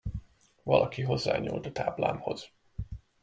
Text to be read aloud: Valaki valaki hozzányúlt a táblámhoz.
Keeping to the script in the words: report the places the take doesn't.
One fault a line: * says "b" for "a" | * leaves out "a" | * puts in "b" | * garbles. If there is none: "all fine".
* leaves out "valaki"